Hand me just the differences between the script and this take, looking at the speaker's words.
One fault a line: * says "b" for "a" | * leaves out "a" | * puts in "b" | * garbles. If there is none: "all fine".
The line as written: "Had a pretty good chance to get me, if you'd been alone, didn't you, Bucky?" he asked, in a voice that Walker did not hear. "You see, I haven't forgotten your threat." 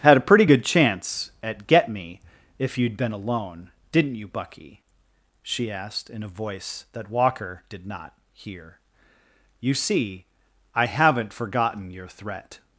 * says "at" for "to"
* says "she" for "he"